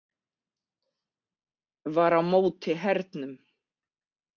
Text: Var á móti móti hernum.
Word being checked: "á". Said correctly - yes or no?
yes